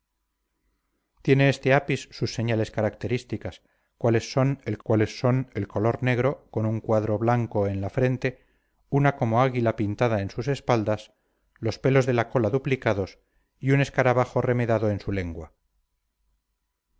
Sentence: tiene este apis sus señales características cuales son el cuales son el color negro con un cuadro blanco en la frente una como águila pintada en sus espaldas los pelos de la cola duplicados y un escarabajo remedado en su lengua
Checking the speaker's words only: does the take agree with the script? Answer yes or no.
yes